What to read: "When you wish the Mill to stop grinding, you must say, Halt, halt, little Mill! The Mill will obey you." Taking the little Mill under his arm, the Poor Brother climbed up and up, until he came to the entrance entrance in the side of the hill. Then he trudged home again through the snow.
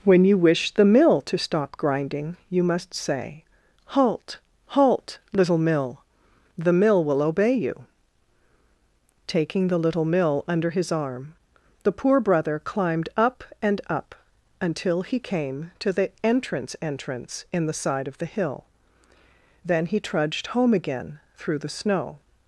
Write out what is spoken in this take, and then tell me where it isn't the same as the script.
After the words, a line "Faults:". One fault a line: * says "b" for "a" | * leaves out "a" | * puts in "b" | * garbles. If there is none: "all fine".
"When you wish the Mill to stop grinding, you must say, Halt, halt, little Mill! The Mill will obey you." Taking the little Mill under his arm, the Poor Brother climbed up and up, until he came to the entrance entrance in the side of the hill. Then he trudged home again through the snow.
Faults:
all fine